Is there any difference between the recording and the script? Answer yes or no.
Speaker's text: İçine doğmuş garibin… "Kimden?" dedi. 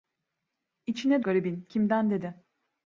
yes